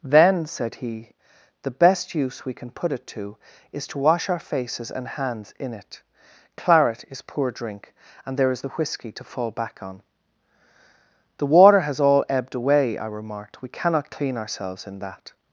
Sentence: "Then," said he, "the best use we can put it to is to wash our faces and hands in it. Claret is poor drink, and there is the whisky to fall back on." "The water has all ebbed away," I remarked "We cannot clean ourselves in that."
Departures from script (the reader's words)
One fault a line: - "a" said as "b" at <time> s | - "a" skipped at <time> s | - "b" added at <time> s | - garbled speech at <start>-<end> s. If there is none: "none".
none